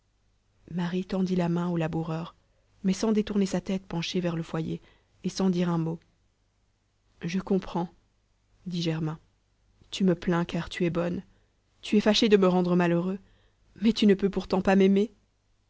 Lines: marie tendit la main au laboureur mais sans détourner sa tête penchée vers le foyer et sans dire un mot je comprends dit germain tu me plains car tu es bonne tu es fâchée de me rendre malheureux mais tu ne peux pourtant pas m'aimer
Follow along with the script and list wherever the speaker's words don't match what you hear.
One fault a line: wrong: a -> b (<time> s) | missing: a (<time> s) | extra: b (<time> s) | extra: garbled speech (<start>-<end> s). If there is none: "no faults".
no faults